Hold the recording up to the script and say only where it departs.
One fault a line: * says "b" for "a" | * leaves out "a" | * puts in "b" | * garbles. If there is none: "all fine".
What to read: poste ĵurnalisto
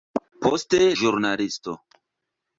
all fine